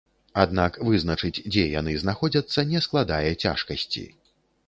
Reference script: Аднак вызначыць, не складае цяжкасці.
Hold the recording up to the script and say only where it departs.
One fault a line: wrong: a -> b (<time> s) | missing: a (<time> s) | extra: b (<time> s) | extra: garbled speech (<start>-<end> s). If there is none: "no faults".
extra: дзе яны знаходзяцца (1.5 s)